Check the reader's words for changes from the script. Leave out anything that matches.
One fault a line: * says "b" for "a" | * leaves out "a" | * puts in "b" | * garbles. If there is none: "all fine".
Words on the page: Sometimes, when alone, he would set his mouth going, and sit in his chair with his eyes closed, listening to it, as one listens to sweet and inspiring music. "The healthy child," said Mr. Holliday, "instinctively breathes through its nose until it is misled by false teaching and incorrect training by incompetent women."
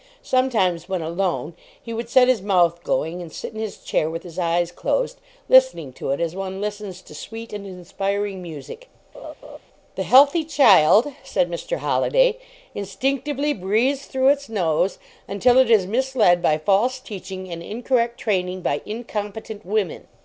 all fine